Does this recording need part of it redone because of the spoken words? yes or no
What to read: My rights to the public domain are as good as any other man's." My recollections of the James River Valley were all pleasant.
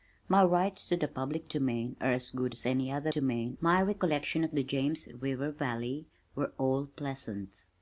yes